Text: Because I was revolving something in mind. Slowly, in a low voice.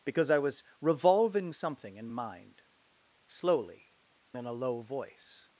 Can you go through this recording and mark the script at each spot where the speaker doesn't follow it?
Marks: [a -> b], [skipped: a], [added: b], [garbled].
Because I was revolving something in mind. Slowly, in a low voice.